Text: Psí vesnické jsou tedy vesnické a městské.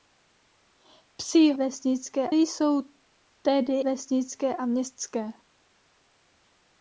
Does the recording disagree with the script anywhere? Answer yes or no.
no